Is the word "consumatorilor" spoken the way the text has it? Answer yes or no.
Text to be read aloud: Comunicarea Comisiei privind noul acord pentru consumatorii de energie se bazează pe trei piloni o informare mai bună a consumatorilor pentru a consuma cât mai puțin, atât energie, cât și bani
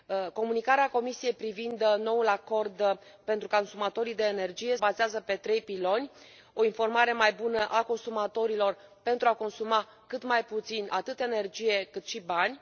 yes